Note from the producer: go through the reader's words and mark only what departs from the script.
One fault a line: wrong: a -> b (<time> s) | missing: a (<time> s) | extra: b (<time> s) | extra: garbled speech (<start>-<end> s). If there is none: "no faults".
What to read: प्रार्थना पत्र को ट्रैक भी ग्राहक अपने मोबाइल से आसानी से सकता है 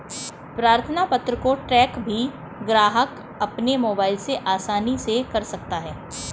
extra: कर (5.3 s)